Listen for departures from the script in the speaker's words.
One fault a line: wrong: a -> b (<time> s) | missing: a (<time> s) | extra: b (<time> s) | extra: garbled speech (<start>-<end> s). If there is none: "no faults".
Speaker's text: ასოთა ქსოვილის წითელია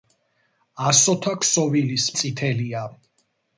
no faults